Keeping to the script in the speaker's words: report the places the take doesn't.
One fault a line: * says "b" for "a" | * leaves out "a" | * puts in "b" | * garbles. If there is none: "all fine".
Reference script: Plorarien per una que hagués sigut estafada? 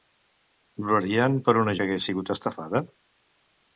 all fine